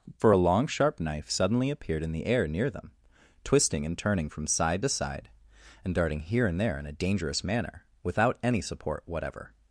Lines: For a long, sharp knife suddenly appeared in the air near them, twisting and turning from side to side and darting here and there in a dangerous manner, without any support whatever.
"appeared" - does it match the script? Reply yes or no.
yes